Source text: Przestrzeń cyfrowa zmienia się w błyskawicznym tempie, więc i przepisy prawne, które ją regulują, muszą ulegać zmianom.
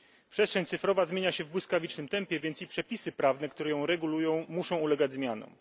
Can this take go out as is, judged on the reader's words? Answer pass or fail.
pass